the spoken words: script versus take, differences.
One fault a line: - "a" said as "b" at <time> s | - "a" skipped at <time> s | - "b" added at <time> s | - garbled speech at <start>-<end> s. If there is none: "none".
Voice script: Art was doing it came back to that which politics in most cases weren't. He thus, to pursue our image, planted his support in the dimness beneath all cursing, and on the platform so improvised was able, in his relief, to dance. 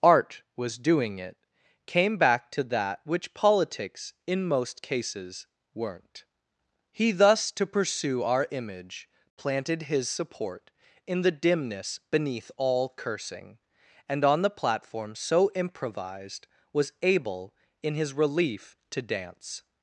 none